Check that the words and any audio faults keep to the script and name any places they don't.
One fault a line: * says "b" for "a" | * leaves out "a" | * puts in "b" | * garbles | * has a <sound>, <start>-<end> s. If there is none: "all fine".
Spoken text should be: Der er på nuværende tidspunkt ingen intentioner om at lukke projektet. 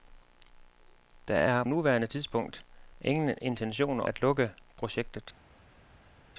* leaves out "på"
* leaves out "om"